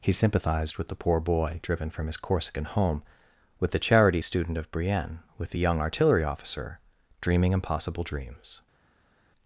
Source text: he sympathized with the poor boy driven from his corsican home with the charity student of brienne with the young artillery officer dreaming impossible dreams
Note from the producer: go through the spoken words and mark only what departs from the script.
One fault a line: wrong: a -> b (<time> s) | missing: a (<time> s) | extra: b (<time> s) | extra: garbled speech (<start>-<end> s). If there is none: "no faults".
no faults